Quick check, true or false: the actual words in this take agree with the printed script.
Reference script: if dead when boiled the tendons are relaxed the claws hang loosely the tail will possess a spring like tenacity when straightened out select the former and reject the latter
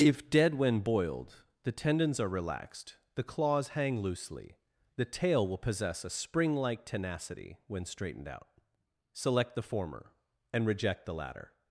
true